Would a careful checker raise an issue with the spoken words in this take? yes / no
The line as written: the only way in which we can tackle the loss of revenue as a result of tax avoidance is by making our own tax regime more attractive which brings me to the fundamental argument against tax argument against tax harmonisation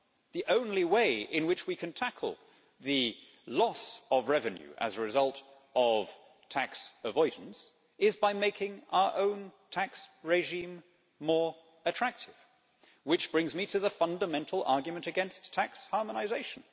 yes